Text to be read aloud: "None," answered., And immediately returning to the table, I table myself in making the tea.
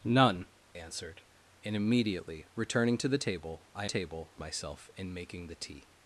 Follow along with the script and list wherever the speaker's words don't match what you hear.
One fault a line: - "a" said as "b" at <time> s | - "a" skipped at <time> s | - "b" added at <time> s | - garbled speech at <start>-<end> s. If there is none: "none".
none